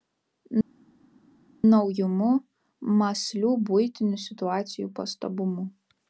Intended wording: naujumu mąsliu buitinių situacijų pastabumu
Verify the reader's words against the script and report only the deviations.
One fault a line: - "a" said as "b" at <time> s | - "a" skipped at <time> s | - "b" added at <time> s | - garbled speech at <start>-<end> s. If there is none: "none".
none